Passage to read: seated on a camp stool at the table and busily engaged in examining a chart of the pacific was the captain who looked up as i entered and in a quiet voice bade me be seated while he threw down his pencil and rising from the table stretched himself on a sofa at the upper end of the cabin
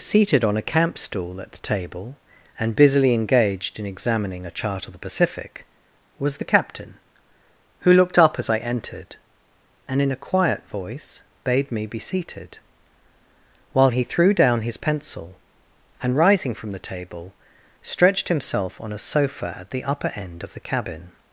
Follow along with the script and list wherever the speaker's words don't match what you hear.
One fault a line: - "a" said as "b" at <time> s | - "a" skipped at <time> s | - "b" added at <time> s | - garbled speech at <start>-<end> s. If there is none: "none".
none